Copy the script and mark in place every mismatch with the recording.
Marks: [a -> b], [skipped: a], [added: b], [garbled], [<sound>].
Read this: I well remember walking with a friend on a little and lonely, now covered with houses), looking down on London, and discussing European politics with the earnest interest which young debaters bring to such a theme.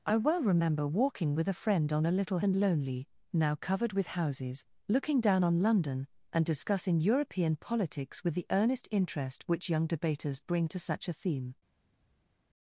I well remember walking with a friend on a little and lonely, now covered with houses), looking down on London, and discussing European politics with the earnest interest which young debaters bring to such a theme.